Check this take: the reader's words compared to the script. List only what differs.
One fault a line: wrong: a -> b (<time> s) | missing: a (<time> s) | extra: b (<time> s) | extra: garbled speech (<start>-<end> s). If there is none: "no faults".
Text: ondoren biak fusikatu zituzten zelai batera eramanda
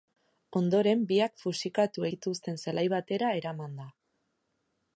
no faults